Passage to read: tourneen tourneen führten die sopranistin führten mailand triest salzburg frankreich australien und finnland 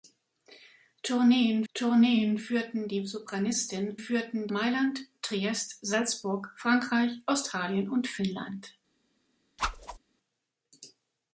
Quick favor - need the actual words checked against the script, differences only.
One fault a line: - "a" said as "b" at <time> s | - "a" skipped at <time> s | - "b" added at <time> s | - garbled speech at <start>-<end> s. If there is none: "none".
none